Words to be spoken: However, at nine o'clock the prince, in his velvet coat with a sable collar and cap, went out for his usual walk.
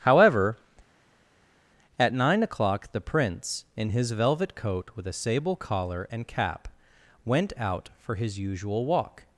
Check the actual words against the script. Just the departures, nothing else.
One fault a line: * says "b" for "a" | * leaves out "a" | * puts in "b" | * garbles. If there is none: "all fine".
all fine